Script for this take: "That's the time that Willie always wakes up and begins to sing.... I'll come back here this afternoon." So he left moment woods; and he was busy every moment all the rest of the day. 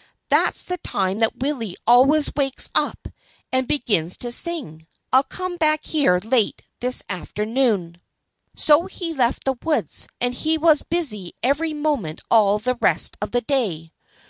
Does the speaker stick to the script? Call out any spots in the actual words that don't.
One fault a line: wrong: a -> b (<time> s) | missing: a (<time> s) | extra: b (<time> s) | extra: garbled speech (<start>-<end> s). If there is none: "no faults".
extra: late (6.2 s)
wrong: moment -> the (9.4 s)